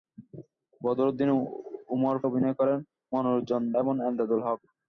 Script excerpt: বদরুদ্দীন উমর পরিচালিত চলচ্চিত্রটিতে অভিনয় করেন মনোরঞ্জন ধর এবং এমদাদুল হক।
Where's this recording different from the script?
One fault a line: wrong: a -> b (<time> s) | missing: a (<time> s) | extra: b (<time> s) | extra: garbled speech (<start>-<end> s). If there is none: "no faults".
missing: পরিচালিত চলচ্চিত্রটিতে (2.1 s)
missing: ধর (3.6 s)